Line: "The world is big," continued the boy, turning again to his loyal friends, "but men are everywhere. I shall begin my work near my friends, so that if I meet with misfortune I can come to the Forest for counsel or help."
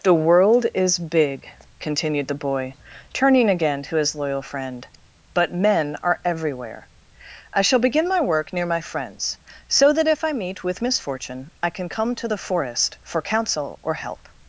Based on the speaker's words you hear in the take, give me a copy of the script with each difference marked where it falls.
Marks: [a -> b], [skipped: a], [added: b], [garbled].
"The world is big," continued the boy, turning again to his loyal [friends, -> friend] "but men are everywhere. I shall begin my work near my friends, so that if I meet with misfortune I can come to the Forest for counsel or help."